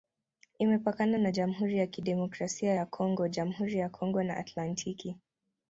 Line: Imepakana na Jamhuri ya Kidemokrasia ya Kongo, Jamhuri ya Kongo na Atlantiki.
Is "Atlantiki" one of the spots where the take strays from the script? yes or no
no